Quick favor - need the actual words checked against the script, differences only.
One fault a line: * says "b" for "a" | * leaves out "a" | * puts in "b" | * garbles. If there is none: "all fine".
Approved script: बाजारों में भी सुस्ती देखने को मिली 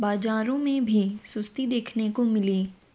all fine